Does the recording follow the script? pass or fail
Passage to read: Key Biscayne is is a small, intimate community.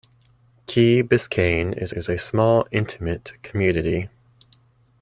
pass